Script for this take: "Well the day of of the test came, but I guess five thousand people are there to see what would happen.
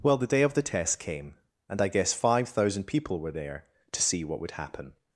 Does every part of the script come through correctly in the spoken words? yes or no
no